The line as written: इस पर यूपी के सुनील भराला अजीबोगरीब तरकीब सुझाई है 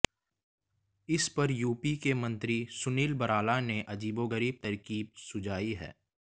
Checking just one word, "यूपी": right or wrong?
right